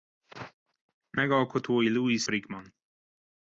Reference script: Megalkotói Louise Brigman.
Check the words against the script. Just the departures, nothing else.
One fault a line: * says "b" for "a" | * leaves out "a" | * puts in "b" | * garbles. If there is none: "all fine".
all fine